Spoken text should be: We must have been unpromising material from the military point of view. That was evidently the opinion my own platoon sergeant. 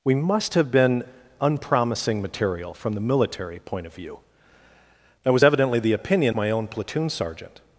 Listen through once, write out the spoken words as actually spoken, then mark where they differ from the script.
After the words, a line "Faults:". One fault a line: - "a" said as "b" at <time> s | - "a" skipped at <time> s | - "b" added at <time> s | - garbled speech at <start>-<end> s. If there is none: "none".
We must have been unpromising material from the military point of view. That was evidently the opinion my own platoon sergeant.
Faults:
none